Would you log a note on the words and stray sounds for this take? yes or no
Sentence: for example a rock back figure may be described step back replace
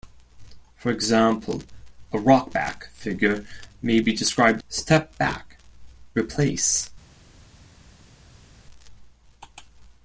no